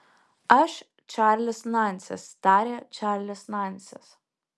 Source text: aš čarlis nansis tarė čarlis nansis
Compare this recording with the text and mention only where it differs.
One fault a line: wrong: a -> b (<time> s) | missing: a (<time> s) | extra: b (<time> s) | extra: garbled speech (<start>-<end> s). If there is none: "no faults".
no faults